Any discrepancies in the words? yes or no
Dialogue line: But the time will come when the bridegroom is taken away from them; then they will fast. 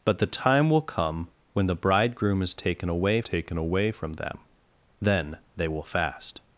yes